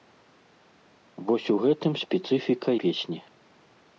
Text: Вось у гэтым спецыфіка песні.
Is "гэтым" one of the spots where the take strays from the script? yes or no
no